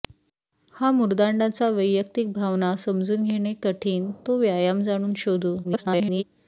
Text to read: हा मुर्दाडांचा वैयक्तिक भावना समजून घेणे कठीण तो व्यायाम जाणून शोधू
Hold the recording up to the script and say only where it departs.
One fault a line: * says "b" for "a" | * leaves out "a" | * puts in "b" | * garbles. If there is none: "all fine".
* garbles